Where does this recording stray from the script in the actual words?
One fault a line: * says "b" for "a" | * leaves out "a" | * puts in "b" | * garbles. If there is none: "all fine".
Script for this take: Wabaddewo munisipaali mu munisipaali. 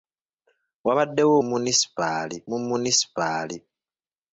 all fine